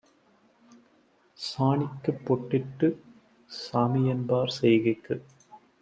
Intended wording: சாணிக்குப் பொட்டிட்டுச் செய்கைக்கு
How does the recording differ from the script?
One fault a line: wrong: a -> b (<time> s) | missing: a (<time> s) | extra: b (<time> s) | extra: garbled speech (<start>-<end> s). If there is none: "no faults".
extra: சாமிஎன்பார் (3.5 s)